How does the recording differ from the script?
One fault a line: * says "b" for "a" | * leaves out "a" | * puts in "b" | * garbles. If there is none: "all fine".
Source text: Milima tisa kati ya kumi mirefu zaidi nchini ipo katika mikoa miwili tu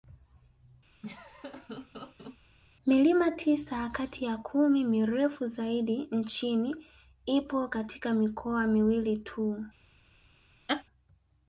all fine